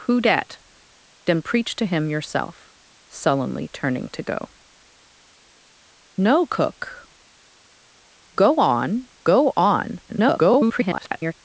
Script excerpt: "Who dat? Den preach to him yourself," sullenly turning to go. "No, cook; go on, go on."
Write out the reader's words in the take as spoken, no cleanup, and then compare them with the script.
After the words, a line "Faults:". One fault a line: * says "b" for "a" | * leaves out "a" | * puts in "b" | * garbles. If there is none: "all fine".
"Who dat? Den preach to him yourself," sullenly turning to go. "No, cook; go on, go on." [garbled]
Faults:
* garbles